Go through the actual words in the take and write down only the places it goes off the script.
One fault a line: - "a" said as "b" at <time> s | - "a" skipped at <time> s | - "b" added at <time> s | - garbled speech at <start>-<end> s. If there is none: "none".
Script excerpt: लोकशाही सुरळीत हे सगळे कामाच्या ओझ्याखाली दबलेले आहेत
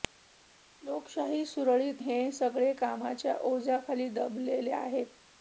none